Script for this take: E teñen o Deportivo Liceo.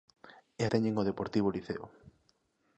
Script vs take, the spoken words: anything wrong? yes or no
no